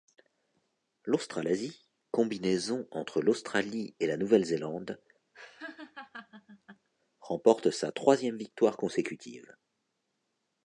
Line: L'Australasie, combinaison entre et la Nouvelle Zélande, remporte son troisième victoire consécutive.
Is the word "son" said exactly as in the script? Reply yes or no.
no